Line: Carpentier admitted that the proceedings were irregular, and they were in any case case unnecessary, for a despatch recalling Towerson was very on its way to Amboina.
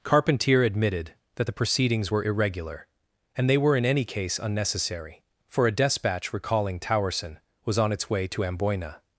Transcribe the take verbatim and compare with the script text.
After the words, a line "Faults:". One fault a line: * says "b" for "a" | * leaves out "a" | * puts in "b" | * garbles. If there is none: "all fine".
Carpentier admitted that the proceedings were irregular, and they were in any case unnecessary, for a despatch recalling Towerson was on its way to Amboina.
Faults:
* leaves out "case"
* leaves out "very"